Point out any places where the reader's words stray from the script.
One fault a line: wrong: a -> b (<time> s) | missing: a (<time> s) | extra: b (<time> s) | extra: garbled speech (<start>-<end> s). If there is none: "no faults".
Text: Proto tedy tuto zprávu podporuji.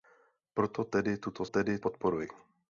wrong: zprávu -> tedy (1.4 s)